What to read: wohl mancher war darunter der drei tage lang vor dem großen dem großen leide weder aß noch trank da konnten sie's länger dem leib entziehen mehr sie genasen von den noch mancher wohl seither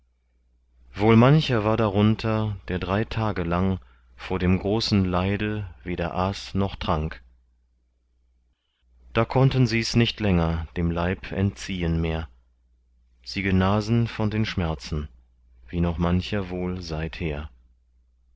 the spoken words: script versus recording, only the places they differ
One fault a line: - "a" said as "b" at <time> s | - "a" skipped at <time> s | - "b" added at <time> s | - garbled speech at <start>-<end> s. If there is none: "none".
- "dem großen" skipped at 5.0 s
- "nicht" added at 9.9 s
- "schmerzen wie" added at 14.5 s